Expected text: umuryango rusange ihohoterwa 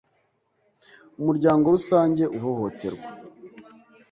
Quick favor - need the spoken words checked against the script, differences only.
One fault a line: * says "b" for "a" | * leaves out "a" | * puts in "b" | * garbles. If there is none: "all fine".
all fine